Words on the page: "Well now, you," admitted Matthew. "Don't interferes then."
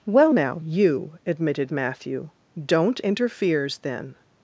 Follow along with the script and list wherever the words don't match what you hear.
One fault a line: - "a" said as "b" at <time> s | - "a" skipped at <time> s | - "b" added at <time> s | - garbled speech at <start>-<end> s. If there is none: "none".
none